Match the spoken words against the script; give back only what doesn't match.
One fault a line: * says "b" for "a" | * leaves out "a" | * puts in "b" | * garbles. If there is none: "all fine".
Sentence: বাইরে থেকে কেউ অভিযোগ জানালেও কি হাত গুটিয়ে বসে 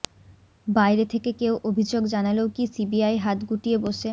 * puts in "সিবিআই"